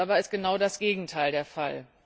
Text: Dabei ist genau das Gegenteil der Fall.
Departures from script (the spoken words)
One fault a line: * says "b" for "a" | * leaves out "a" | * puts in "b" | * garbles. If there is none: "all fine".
all fine